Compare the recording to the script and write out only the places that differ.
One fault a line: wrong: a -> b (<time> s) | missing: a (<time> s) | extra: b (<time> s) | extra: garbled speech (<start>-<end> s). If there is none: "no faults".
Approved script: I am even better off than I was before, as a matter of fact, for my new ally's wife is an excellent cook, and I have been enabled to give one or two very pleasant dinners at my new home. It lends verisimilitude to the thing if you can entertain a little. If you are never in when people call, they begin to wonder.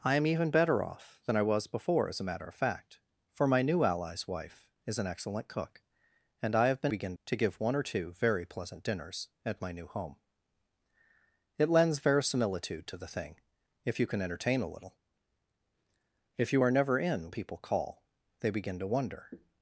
wrong: enabled -> begin (6.9 s)
missing: when (17.3 s)